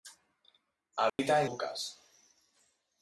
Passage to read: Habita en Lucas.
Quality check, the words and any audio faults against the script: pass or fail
fail